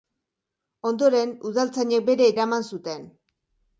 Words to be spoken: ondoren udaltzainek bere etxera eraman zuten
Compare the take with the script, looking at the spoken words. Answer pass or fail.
fail